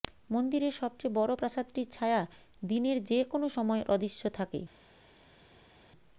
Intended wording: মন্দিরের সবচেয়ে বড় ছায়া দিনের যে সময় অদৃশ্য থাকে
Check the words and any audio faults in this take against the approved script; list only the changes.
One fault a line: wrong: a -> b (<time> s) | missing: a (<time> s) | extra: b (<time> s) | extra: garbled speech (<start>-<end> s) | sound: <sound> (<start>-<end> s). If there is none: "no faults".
extra: প্রাসাদটির (1.3 s)
extra: কোনও (3.2 s)